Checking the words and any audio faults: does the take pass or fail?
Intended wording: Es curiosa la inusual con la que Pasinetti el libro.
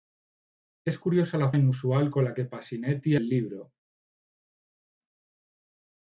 pass